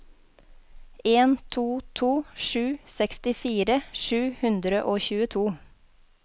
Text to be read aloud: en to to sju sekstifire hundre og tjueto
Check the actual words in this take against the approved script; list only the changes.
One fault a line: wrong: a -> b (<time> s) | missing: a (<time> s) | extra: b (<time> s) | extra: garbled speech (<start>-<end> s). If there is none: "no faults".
extra: sju (4.0 s)